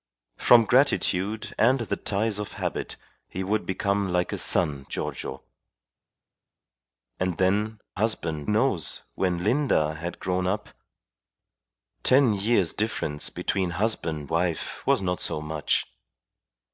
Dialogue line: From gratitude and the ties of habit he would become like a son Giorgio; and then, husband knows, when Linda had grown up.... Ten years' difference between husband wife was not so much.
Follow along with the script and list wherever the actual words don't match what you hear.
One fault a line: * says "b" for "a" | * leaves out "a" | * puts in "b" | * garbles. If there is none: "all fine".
all fine